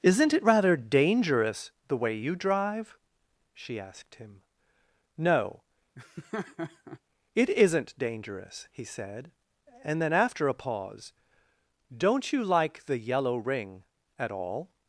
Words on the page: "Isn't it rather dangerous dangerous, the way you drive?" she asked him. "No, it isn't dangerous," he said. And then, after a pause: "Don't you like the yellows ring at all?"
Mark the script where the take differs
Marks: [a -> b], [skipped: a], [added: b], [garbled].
"Isn't it rather dangerous [skipped: dangerous,] the way you drive?" she asked him. "No, it isn't dangerous," he said. And then, after a pause: "Don't you like the [yellows -> yellow] ring at all?"